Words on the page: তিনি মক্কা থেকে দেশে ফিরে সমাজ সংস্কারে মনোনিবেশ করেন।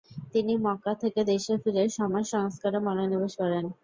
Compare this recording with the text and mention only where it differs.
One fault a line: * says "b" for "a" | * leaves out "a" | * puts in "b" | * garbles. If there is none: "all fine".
all fine